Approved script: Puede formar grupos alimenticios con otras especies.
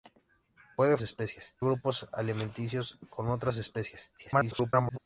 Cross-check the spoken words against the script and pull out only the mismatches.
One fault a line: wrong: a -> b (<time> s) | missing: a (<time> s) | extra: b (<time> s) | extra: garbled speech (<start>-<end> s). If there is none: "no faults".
wrong: formar -> especies (1.0 s)
extra: garbled speech (4.2-5.0 s)